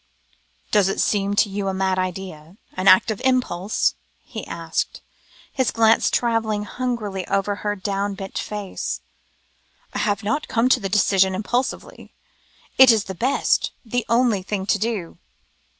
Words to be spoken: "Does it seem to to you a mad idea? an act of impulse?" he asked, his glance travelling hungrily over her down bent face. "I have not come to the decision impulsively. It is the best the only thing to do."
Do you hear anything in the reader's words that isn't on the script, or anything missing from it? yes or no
yes